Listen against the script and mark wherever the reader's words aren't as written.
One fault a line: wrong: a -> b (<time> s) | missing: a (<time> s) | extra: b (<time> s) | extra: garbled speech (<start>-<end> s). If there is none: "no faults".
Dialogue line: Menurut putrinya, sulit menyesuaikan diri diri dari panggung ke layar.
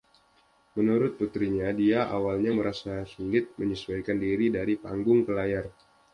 extra: dia awalnya merasa (1.7 s)
missing: diri (4.5 s)